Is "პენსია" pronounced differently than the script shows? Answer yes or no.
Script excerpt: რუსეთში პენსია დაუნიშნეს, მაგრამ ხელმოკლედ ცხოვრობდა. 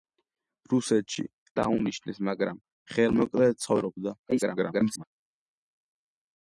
yes